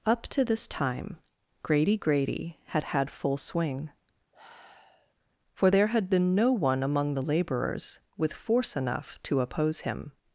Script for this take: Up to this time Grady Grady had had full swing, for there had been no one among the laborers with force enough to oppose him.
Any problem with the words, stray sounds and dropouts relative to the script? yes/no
yes